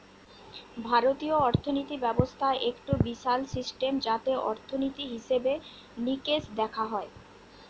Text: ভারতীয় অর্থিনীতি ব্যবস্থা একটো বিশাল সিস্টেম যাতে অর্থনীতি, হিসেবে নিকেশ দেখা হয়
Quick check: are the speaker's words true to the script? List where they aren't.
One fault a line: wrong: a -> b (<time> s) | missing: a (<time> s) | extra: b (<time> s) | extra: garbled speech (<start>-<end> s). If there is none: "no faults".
no faults